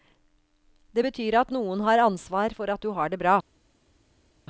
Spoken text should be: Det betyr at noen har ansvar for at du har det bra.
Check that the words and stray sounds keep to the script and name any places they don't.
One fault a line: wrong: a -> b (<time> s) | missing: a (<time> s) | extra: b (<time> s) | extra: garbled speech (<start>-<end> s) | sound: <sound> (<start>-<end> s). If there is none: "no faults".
no faults